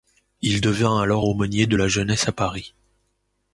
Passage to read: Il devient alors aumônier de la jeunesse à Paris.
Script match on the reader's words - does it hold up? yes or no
yes